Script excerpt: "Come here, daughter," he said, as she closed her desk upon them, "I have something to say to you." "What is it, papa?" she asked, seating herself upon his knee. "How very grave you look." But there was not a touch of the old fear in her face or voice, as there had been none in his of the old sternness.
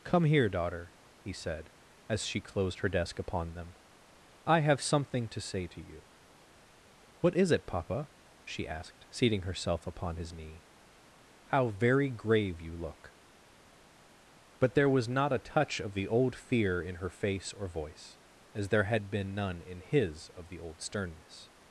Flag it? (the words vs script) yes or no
no